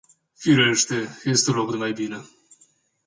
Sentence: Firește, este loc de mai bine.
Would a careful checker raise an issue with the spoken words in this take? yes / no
no